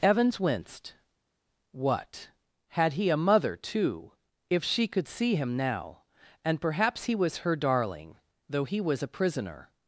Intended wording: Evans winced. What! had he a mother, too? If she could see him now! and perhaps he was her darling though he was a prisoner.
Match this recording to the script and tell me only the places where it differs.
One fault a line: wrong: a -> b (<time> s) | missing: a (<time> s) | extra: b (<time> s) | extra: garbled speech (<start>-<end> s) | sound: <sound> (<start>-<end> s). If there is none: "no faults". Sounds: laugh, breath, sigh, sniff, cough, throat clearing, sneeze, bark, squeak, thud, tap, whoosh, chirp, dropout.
no faults